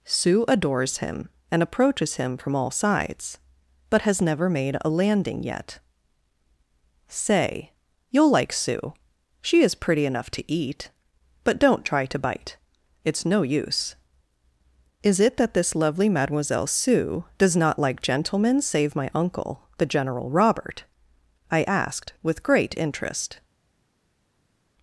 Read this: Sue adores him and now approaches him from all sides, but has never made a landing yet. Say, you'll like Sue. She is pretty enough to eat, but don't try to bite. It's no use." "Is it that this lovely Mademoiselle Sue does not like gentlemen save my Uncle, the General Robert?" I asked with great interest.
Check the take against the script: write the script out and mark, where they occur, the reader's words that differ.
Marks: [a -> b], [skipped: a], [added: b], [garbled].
Sue adores him and [skipped: now] approaches him from all sides, but has never made a landing yet. Say, you'll like Sue. She is pretty enough to eat, but don't try to bite. It's no use." "Is it that this lovely Mademoiselle Sue does not like gentlemen save my Uncle, the General Robert?" I asked with great interest.